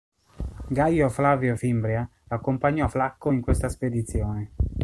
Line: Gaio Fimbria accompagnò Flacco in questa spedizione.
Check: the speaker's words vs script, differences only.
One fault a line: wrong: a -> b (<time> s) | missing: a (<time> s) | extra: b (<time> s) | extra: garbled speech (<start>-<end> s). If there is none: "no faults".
extra: Flavio (1.1 s)